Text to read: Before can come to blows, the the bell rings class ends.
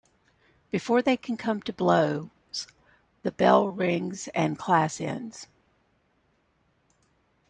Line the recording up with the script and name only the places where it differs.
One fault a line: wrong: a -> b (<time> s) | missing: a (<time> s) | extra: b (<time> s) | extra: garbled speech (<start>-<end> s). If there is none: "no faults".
extra: they (1.0 s)
missing: the (3.3 s)
extra: and (4.3 s)